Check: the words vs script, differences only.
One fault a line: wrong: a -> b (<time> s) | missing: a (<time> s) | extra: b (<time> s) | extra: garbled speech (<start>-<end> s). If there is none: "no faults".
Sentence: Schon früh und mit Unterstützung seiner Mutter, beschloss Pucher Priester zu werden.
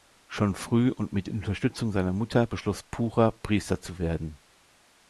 no faults